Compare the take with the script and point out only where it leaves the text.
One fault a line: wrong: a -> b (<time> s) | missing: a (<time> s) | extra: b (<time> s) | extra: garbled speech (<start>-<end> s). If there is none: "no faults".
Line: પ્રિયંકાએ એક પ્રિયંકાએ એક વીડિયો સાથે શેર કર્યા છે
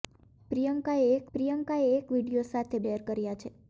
no faults